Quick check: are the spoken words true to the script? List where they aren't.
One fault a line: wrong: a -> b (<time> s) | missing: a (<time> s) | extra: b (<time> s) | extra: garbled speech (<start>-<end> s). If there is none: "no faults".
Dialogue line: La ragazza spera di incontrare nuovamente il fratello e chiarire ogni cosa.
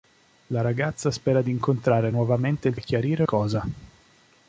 missing: fratello (2.8 s)
missing: ogni (3.2 s)